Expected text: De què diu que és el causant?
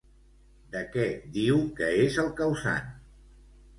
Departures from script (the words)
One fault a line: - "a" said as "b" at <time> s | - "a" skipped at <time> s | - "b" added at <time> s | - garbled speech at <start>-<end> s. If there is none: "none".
none